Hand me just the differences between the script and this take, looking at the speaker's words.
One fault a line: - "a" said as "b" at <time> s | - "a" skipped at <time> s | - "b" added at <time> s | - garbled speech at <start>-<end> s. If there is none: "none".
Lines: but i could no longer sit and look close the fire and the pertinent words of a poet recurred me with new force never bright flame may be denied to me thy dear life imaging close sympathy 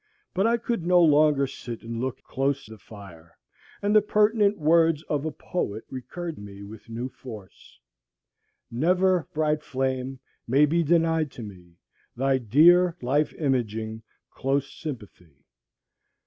none